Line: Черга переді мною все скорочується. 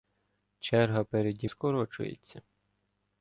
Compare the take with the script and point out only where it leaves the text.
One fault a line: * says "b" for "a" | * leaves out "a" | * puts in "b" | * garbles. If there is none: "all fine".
* leaves out "мною все"